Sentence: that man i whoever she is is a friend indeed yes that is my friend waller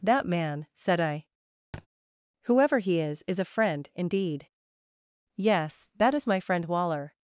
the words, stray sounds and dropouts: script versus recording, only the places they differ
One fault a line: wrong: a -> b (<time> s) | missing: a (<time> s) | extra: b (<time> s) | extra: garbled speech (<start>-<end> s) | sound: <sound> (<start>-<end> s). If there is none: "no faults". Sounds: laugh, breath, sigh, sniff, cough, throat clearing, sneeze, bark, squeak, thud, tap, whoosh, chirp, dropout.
extra: said (0.7 s)
sound: thud (1.7-1.9 s)
wrong: she -> he (2.8 s)